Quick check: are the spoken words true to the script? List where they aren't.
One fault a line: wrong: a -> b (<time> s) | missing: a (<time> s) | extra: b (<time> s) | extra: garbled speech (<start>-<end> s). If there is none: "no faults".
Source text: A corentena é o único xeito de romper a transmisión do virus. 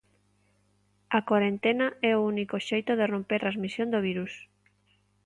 missing: a (3.4 s)